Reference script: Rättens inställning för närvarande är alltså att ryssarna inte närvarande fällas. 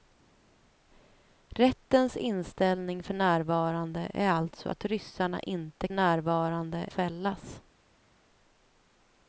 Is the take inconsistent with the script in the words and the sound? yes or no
no